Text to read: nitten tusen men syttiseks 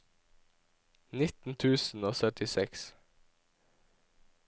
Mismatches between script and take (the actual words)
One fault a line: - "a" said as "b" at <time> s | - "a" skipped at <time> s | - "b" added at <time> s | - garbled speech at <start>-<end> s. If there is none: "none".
- "men" said as "og" at 2.0 s